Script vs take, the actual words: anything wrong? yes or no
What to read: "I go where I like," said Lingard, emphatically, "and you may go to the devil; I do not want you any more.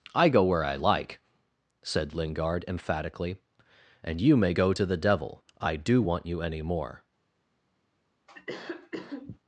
yes